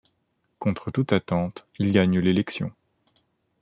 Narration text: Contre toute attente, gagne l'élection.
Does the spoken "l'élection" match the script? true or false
true